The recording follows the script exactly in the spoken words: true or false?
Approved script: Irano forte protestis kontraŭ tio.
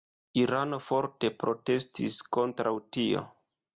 true